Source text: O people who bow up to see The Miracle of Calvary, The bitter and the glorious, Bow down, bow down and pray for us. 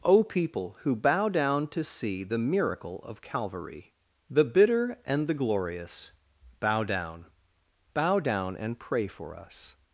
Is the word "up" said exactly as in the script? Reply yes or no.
no